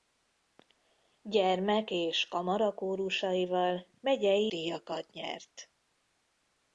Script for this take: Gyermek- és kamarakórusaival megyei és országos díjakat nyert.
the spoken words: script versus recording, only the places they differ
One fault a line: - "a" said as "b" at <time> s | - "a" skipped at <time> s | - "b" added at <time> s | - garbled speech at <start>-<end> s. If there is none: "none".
- "és országos" skipped at 4.5 s